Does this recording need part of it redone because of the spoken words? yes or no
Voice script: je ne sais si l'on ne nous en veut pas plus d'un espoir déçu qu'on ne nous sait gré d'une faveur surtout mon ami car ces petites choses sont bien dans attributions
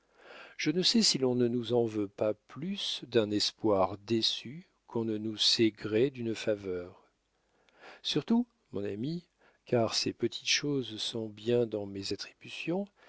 yes